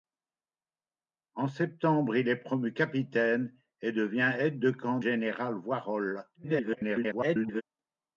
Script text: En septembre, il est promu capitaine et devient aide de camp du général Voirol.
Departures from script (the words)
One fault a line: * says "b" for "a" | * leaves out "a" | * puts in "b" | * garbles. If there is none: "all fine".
* leaves out "du"
* garbles